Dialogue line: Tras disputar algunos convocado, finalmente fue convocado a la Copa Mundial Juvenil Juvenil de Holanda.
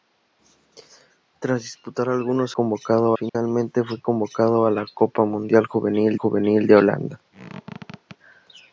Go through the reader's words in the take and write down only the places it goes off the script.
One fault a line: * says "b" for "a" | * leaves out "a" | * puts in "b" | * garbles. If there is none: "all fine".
all fine